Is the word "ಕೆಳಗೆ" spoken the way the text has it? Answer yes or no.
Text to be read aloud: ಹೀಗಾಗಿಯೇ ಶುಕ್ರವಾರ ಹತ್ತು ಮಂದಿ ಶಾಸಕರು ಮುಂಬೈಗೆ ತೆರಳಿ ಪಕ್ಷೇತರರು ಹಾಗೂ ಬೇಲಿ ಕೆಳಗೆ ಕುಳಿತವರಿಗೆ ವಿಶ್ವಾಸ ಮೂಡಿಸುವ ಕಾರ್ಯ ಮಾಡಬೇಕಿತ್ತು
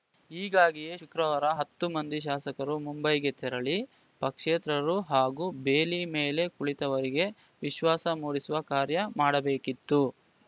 no